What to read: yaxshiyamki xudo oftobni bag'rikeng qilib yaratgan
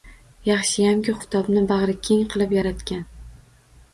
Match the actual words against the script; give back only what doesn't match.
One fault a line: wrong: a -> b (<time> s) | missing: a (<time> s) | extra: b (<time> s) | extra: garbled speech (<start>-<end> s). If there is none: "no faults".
missing: xudo (1.1 s)